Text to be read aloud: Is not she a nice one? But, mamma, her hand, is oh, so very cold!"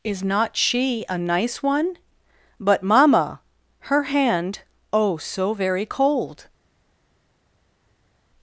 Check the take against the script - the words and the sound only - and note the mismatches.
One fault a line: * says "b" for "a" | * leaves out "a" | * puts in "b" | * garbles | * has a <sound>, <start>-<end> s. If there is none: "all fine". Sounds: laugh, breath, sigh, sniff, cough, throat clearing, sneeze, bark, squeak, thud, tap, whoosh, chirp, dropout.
* leaves out "is"